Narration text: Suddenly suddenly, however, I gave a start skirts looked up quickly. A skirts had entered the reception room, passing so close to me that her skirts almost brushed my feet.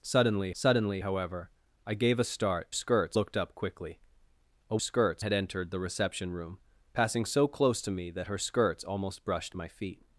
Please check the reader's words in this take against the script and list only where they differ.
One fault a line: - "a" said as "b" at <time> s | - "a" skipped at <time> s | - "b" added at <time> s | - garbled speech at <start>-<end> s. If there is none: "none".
none